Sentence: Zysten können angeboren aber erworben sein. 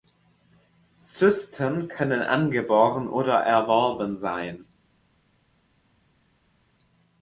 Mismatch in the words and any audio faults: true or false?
true